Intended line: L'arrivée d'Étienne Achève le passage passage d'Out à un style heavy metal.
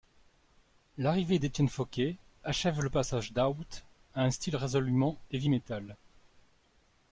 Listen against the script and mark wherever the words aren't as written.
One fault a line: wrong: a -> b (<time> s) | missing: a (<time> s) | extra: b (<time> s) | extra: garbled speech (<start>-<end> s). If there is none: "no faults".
extra: Fauquet (1.7 s)
missing: passage (3.3 s)
extra: résolument (4.6 s)